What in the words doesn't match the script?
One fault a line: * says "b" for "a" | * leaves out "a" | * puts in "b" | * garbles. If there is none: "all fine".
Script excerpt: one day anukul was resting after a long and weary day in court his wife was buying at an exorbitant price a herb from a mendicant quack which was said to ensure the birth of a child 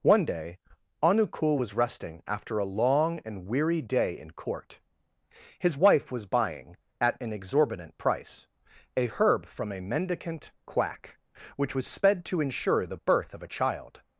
* says "sped" for "said"